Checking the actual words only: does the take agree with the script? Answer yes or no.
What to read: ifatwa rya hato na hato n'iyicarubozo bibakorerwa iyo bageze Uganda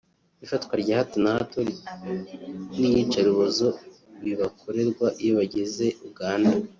yes